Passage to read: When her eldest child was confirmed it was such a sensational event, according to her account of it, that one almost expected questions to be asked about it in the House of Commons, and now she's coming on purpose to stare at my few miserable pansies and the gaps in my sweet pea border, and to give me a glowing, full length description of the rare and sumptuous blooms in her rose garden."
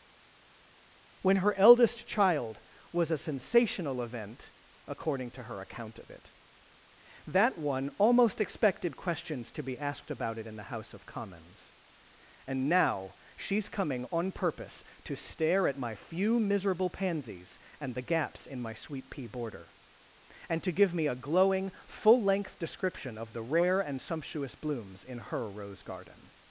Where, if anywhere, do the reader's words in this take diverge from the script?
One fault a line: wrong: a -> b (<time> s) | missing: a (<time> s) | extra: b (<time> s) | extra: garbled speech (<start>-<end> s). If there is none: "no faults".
missing: confirmed it was such (3.1 s)